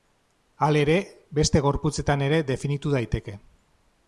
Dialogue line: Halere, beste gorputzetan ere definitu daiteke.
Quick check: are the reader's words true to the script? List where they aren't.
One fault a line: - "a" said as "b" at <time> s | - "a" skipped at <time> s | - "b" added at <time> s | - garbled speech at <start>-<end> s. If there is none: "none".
none